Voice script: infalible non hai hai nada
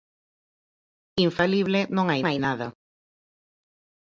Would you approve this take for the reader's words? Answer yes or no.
yes